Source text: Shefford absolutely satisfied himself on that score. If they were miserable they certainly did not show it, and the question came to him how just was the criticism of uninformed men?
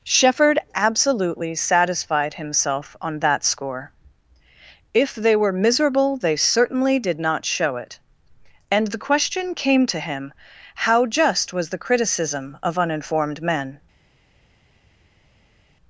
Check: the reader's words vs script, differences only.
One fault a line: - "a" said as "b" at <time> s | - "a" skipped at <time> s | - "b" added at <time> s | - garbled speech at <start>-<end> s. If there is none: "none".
none